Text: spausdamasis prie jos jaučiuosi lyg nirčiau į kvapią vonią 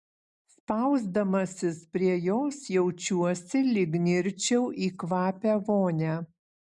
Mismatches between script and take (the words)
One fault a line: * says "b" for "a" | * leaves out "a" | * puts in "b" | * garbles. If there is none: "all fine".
all fine